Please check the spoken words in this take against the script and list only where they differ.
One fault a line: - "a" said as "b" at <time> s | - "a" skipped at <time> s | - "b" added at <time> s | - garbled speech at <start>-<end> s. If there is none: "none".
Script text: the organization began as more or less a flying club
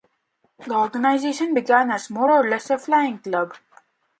none